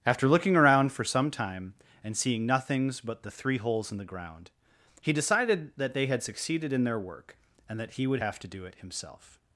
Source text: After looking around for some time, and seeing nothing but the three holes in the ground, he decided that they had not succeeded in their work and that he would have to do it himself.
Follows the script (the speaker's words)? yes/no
no